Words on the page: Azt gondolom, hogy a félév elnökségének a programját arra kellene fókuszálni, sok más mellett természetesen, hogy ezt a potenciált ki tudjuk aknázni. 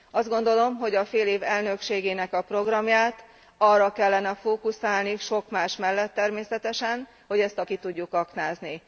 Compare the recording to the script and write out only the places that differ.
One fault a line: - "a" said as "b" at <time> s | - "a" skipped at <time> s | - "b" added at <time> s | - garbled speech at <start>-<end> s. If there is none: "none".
- "potenciált" skipped at 7.6 s